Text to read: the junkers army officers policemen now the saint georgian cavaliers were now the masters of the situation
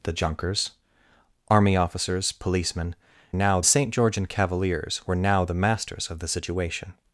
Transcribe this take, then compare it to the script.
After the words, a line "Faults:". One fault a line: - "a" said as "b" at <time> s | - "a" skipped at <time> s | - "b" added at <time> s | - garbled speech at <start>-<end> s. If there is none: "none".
the junkers army officers policemen now the saint georgian cavaliers were now the masters of the situation
Faults:
none